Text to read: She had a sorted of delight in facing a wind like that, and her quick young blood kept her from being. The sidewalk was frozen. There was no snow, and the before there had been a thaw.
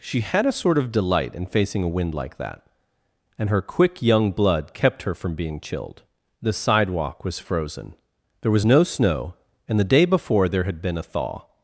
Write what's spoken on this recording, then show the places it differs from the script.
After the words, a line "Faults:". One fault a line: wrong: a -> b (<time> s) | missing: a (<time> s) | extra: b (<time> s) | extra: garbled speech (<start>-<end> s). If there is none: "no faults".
She had a sort of delight in facing a wind like that, and her quick young blood kept her from being chilled. The sidewalk was frozen. There was no snow, and the day before there had been a thaw.
Faults:
wrong: sorted -> sort (0.5 s)
extra: chilled (5.6 s)
extra: day (9.9 s)